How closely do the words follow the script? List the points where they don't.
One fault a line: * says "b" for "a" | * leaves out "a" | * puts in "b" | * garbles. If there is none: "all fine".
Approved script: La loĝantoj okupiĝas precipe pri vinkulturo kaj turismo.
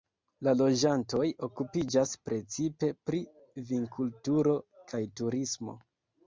all fine